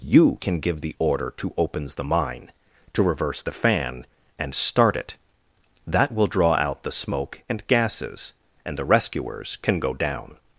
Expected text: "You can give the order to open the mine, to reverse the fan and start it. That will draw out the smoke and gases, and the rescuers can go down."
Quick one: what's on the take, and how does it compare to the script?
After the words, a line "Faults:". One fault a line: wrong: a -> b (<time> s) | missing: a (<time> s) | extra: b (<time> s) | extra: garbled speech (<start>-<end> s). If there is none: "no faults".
"You can give the order to opens the mine, to reverse the fan and start it. That will draw out the smoke and gases, and the rescuers can go down."
Faults:
wrong: open -> opens (1.6 s)